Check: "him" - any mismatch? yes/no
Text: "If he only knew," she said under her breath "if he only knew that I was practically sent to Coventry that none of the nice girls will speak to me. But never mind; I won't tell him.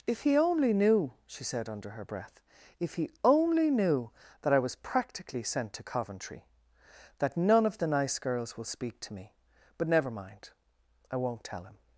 no